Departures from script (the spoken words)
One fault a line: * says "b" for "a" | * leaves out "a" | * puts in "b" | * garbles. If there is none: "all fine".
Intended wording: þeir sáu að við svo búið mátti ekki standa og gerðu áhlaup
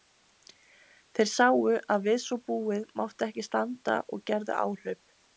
all fine